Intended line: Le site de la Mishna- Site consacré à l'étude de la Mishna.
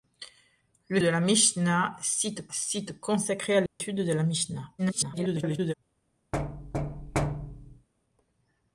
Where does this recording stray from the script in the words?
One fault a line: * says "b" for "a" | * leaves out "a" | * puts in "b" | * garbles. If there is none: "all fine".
* leaves out "site"
* puts in "Site"
* garbles